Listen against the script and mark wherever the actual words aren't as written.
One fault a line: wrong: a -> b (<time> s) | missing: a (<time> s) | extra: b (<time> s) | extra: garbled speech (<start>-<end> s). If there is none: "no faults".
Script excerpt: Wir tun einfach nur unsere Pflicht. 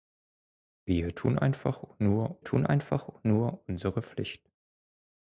extra: tun einfach nur (2.4 s)